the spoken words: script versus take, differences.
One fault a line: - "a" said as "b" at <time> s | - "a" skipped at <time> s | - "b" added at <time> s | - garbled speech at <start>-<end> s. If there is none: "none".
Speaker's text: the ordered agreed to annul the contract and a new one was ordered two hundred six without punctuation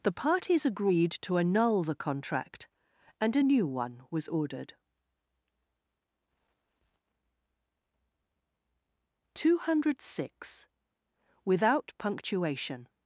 - "ordered" said as "parties" at 0.1 s